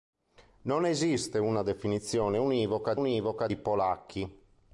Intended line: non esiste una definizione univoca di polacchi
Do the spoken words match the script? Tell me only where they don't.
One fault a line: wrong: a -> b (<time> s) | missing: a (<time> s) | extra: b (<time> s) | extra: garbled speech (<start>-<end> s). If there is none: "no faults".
extra: univoca (2.9 s)